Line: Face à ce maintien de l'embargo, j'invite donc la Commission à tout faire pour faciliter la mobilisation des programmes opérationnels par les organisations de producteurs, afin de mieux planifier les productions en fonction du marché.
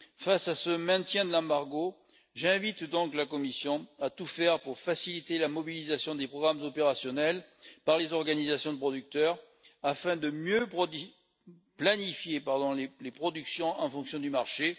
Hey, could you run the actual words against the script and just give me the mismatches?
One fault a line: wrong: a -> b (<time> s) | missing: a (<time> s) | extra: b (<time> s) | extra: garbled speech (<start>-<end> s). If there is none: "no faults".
no faults